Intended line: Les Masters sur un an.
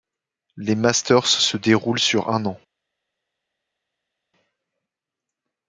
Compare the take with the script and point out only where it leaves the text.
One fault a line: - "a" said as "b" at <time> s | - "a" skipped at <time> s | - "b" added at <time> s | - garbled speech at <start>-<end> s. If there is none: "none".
- "se déroulent" added at 1.3 s